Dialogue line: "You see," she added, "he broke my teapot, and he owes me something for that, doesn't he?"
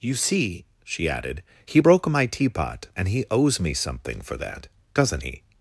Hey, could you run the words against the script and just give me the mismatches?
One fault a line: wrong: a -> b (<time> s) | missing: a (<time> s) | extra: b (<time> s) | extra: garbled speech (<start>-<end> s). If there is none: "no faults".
no faults